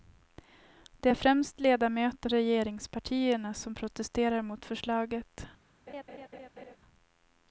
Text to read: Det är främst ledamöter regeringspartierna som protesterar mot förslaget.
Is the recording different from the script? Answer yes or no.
no